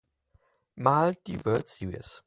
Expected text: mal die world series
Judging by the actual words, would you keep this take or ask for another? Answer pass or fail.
pass